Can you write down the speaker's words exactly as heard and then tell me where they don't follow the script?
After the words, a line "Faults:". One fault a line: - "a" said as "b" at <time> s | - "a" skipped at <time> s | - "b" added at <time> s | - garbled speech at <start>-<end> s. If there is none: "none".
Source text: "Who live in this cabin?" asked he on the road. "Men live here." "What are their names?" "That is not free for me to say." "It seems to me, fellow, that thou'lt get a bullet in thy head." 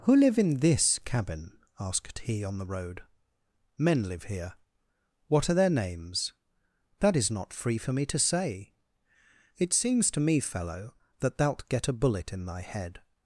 "Who live in this cabin?" asked he on the road. "Men live here." "What are their names?" "That is not free for me to say." "It seems to me, fellow, that thou'lt get a bullet in thy head."
Faults:
none